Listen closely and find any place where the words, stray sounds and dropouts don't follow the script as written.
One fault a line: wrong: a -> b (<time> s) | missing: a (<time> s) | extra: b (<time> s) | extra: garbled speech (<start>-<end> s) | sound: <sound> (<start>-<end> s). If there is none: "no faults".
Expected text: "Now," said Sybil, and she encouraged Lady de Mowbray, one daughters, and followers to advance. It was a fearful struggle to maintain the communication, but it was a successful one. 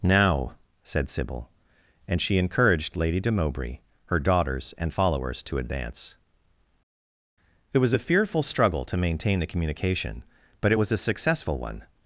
wrong: one -> her (4.0 s)